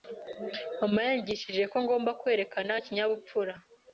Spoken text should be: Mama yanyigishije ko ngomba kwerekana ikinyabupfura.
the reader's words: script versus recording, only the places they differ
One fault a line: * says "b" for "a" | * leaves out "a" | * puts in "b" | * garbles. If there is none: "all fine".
all fine